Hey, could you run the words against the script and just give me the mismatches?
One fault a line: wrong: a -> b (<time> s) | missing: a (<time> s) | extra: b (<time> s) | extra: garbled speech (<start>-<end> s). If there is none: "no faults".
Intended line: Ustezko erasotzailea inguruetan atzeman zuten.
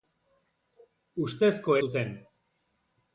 missing: erasotzailea inguruetan atzeman (1.8 s)